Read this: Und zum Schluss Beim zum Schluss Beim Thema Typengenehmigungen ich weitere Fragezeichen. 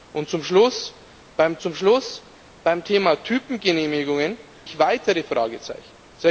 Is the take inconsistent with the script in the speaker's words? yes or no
no